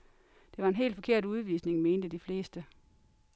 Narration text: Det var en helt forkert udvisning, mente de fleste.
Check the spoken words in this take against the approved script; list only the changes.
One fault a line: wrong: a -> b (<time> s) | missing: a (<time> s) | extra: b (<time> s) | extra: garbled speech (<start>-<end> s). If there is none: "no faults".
no faults